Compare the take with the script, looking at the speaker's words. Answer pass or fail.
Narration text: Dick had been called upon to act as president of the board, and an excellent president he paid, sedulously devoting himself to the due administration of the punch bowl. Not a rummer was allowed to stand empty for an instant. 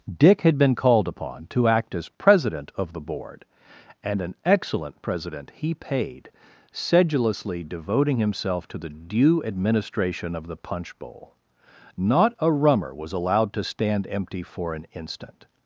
pass